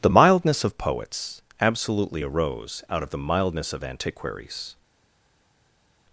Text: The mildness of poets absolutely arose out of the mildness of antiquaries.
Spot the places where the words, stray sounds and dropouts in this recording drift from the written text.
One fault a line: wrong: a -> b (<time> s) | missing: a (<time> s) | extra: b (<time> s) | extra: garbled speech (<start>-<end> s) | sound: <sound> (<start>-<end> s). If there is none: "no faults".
no faults